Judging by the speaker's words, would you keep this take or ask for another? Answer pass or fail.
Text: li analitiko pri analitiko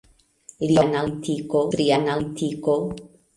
pass